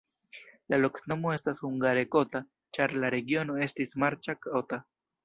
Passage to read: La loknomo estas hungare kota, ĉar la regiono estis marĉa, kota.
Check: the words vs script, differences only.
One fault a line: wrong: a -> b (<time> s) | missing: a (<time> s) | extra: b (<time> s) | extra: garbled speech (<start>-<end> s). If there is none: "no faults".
no faults